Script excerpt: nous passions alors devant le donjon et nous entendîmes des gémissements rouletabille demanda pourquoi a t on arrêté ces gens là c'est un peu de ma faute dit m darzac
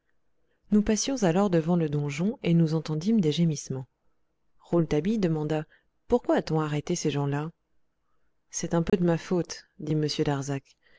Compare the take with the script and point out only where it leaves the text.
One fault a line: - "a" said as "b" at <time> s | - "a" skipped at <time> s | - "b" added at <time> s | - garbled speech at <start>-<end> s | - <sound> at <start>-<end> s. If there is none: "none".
- dropout at 8.9-8.9 s